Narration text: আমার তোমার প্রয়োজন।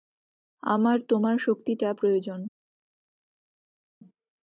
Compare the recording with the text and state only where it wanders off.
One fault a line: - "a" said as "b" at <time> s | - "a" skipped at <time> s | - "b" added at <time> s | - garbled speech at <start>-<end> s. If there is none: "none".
- "শক্তিটা" added at 1.4 s